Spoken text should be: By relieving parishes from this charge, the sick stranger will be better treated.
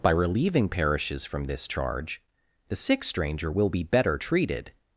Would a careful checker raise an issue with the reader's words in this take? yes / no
no